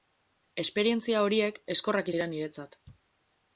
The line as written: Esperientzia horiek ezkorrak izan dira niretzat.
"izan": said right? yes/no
no